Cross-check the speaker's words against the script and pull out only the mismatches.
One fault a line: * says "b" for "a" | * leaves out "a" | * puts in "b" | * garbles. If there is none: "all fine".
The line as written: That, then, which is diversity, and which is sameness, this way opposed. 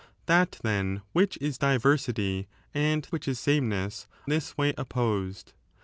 all fine